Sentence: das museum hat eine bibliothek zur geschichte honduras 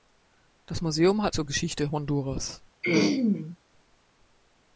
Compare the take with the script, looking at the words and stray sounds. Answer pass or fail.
fail